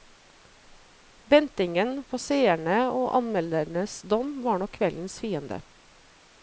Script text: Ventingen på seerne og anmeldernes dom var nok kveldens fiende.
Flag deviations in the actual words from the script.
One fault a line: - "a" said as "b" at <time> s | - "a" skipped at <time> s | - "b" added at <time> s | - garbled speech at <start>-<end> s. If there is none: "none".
none